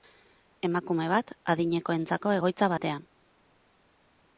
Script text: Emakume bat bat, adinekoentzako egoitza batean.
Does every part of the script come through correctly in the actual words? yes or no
no